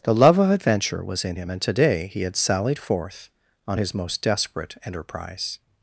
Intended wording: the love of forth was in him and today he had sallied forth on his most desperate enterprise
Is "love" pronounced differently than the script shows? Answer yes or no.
no